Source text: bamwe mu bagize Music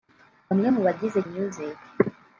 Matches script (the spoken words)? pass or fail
pass